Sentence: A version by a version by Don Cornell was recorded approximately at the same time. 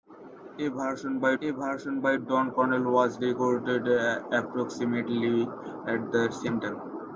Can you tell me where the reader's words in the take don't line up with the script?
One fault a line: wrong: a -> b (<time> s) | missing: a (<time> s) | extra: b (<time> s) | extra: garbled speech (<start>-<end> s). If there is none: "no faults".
no faults